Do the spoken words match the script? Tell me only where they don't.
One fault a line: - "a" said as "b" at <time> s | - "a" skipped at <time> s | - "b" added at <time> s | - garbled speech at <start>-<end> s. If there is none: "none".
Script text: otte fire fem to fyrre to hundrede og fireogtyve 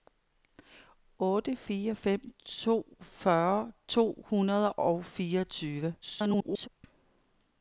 - garbled speech at 6.0-6.7 s